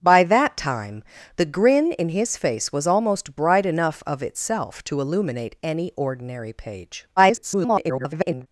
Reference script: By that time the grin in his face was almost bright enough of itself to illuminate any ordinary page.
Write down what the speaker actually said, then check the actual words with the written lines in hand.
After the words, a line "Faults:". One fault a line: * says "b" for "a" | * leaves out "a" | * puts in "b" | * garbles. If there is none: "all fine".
By that time the grin in his face was almost bright enough of itself to illuminate any ordinary page. [garbled]
Faults:
* garbles